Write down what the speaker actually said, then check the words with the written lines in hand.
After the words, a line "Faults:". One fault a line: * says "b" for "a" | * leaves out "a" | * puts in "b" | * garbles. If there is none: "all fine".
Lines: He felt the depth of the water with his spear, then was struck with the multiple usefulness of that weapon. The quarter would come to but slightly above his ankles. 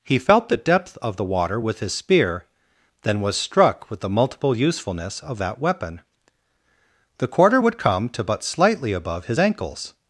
He felt the depth of the water with his spear, then was struck with the multiple usefulness of that weapon. The quarter would come to but slightly above his ankles.
Faults:
all fine